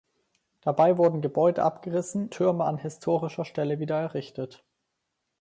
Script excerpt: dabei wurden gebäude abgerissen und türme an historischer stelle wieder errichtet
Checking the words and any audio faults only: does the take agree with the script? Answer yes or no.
no